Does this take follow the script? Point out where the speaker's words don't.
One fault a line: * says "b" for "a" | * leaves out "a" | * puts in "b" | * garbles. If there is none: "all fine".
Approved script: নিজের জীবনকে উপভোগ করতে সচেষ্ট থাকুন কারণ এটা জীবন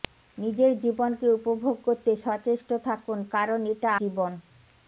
all fine